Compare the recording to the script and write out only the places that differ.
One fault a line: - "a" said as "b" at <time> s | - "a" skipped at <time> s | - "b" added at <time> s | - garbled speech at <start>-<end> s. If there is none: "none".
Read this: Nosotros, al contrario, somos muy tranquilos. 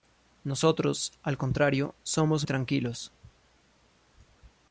- "muy" skipped at 2.5 s